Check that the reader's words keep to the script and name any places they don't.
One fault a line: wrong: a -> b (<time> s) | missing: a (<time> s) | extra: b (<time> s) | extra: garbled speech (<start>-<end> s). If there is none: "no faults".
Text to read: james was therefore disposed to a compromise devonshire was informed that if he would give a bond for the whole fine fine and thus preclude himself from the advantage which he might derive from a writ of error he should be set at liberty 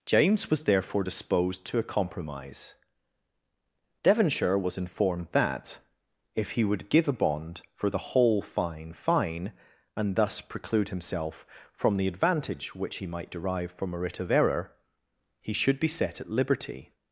no faults